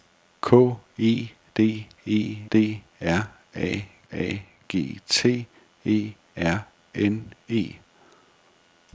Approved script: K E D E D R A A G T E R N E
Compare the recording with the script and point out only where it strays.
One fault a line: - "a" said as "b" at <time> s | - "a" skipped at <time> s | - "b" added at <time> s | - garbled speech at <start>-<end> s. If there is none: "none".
none